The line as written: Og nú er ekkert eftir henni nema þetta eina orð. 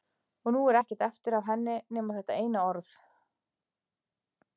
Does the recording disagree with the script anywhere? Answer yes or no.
yes